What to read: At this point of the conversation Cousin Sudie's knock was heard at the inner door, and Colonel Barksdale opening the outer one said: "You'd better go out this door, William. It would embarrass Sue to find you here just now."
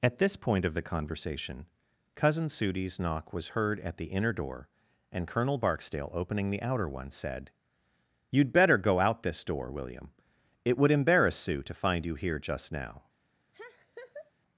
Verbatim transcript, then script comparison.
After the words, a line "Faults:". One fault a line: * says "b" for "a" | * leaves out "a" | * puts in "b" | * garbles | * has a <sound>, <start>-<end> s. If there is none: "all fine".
At this point of the conversation Cousin Sudie's knock was heard at the inner door, and Colonel Barksdale opening the outer one said: "You'd better go out this door, William. It would embarrass Sue to find you here just now."
Faults:
* has a laugh, 13.5-14.3 s